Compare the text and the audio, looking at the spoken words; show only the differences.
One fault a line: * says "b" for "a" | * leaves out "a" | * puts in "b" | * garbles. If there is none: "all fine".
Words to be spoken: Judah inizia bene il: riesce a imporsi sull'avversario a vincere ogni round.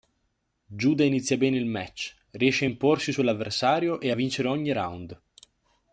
* puts in "match"
* puts in "e"